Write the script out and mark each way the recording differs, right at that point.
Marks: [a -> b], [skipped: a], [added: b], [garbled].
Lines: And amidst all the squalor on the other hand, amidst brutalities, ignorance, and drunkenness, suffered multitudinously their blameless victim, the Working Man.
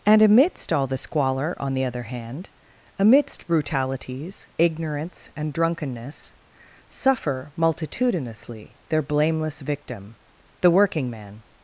And amidst all the squalor on the other hand, amidst brutalities, ignorance, and drunkenness, [suffered -> suffer] multitudinously their blameless victim, the Working Man.